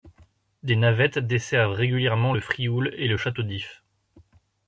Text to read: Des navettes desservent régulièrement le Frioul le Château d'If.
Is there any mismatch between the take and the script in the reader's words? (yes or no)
yes